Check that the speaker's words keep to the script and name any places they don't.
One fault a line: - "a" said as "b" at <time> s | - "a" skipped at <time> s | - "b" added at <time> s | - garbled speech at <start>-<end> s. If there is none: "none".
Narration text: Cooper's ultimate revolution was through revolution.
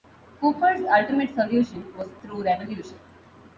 - "revolution" said as "solution" at 1.4 s